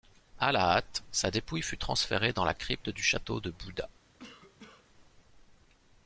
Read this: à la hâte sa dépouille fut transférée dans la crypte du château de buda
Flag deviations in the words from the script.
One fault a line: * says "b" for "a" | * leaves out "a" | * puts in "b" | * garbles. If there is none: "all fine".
all fine